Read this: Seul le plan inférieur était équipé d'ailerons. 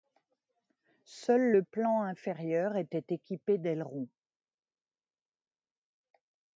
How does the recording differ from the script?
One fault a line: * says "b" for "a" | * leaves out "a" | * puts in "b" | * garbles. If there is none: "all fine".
all fine